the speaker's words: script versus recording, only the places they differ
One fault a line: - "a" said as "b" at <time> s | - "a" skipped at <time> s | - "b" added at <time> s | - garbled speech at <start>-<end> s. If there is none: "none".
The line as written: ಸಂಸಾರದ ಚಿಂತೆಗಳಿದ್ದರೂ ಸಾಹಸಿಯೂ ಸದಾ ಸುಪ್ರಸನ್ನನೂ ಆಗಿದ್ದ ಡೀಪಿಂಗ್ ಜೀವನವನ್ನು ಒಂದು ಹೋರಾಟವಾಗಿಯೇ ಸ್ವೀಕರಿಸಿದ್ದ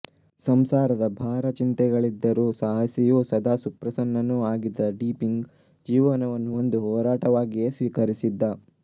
- "ಭಾರ" added at 1.2 s